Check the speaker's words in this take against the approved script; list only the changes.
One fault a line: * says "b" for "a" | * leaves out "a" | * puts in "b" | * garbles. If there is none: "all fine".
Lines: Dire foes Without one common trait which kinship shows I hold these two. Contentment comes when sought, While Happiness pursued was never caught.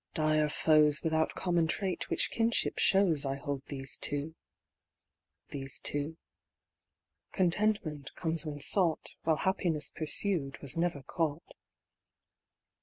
* leaves out "one"
* puts in "these two"